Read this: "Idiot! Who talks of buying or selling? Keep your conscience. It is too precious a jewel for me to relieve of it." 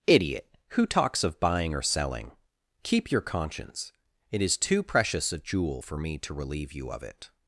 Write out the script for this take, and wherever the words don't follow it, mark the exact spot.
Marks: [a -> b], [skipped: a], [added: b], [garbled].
"Idiot! Who talks of buying or selling? Keep your conscience. It is too precious a jewel for me to relieve [added: you] of it."